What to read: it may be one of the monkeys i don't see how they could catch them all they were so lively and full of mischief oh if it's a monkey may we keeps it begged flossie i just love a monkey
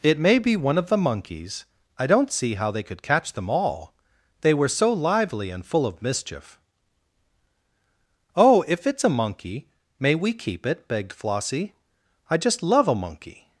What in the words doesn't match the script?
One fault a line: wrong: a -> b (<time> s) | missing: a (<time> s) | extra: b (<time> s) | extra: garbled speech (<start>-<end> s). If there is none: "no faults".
wrong: keeps -> keep (10.3 s)